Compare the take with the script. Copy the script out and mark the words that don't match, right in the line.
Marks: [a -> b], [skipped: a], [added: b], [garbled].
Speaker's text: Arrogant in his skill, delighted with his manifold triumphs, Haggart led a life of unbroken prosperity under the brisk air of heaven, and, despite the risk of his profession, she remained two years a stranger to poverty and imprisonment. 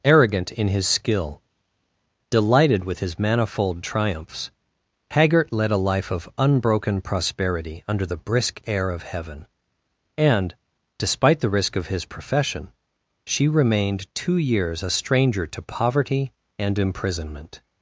Arrogant in his skill, delighted with his manifold triumphs, Haggart led a life of unbroken prosperity under the brisk air of heaven, and, despite the risk of his profession, she remained two years a stranger to poverty and imprisonment.